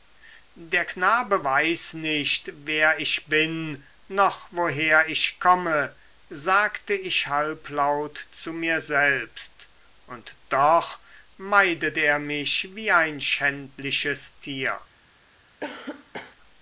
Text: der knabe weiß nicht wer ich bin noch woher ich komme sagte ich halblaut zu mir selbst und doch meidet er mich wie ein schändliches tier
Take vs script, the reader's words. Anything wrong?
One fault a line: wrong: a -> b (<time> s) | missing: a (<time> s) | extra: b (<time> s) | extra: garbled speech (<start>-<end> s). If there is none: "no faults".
no faults